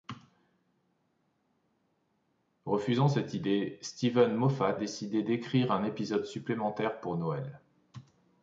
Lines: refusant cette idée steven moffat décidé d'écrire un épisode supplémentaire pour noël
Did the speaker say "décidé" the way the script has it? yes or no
yes